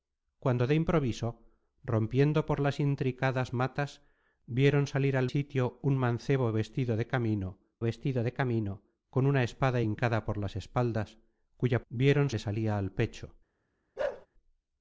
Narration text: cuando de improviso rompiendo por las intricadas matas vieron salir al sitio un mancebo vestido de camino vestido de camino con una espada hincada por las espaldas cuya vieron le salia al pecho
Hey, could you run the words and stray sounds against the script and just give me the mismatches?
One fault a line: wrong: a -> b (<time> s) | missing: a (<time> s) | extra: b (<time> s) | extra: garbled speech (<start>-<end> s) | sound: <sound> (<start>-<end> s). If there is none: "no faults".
sound: bark (14.0-14.3 s)